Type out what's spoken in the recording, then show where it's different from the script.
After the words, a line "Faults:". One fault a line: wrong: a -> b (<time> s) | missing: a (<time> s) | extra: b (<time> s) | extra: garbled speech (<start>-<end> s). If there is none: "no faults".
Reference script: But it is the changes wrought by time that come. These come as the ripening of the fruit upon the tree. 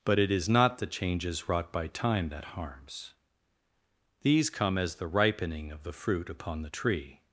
But it is not the changes wrought by time that harms. These come as the ripening of the fruit upon the tree.
Faults:
extra: not (0.5 s)
wrong: come -> harms (2.5 s)